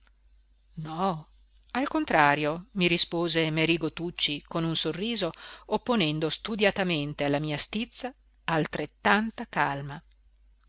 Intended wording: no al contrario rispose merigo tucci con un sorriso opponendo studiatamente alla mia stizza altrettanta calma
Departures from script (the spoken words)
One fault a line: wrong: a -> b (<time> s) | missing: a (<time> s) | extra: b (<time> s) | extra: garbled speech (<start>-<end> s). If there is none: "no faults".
extra: mi (2.7 s)